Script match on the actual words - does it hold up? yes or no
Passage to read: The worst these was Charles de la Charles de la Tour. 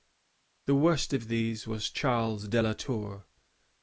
no